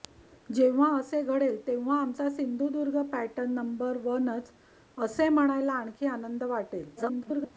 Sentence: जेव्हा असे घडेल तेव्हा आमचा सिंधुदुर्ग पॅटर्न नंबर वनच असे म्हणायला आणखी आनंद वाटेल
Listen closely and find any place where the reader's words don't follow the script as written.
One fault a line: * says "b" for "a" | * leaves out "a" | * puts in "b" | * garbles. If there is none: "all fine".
* garbles